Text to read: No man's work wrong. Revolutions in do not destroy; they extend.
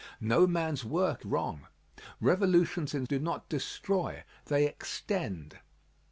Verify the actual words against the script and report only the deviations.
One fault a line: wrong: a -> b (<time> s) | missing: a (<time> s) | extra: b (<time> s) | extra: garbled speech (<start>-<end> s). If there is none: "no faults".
no faults